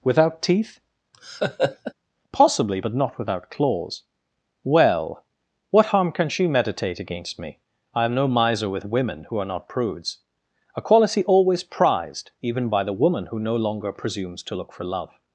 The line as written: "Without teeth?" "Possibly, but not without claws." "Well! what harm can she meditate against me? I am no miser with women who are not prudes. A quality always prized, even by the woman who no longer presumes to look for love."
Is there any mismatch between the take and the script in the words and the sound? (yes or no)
yes